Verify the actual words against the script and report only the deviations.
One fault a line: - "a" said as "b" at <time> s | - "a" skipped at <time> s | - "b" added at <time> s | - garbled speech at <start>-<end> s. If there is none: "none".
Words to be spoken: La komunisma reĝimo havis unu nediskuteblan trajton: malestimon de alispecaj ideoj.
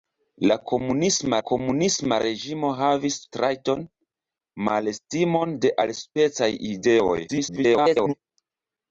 - "komunisma" added at 1.5 s
- "unu nediskuteblan" skipped at 3.2 s
- garbled speech at 7.3-8.1 s